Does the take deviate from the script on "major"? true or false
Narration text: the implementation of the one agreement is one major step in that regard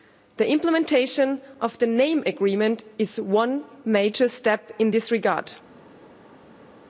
false